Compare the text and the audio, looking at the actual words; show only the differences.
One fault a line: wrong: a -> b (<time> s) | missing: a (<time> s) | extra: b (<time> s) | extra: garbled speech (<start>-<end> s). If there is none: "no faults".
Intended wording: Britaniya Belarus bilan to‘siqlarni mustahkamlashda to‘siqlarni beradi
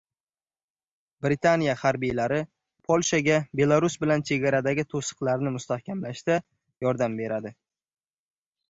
extra: harbiylari Polshaga (1.8 s)
extra: chegaradagi (4.3 s)
wrong: to‘siqlarni -> yordam (6.9 s)